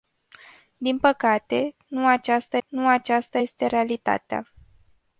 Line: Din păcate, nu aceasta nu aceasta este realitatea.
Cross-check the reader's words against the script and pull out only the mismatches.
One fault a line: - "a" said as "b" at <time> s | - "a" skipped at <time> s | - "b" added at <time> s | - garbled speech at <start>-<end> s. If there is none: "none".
none